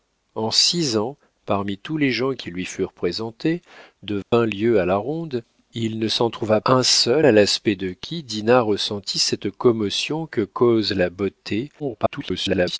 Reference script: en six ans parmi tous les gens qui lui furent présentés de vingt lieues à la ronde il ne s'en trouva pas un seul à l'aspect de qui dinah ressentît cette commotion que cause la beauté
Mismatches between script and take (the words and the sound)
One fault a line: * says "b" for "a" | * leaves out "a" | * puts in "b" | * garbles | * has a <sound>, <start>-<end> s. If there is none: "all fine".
* has a dropout, 4.2-4.3 s
* leaves out "pas"
* garbles